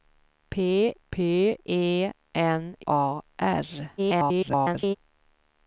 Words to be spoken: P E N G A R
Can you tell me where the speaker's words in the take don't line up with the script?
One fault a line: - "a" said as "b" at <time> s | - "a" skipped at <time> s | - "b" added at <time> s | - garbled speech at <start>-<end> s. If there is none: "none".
- "p" added at 1.1 s
- "G" skipped at 2.7 s
- garbled speech at 4.0-5.0 s